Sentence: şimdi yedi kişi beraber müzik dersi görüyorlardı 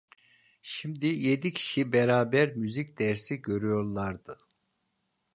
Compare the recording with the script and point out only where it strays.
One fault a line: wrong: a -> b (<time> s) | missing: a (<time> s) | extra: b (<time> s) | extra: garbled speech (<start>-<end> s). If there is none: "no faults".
no faults